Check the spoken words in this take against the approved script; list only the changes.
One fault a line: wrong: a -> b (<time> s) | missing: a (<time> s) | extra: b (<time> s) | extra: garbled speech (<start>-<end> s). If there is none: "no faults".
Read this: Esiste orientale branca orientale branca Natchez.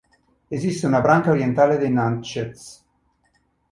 wrong: orientale -> una (0.9 s)
wrong: branca -> dei (1.8 s)